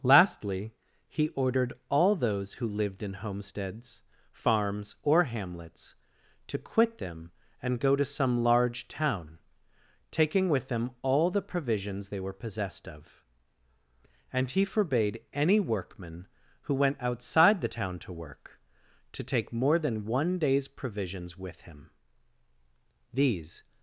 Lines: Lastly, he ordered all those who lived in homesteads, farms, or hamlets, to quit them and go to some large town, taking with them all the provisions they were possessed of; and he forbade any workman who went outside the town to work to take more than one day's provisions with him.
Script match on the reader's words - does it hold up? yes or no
no